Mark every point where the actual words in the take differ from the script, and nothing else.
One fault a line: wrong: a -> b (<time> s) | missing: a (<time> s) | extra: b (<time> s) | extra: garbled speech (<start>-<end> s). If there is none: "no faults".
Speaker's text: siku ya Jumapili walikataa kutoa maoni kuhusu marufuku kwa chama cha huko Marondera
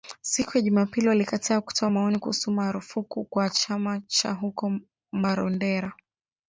no faults